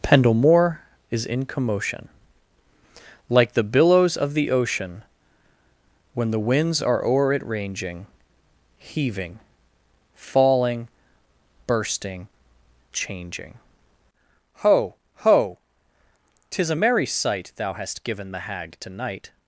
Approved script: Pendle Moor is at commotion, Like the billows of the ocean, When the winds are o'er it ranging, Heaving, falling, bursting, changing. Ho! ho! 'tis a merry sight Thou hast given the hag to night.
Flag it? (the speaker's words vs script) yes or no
yes